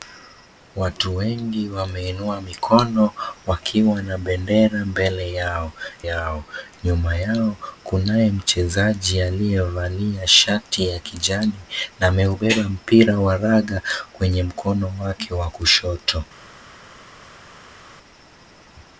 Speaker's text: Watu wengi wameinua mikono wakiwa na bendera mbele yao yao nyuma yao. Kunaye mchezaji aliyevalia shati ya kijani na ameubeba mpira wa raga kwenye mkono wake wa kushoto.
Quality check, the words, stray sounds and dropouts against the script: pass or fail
pass